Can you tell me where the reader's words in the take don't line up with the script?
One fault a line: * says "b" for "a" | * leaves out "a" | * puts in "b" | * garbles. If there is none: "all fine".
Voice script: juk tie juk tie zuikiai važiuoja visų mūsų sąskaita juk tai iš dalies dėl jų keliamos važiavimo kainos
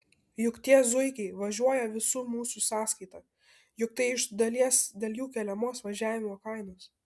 * leaves out "juk tie"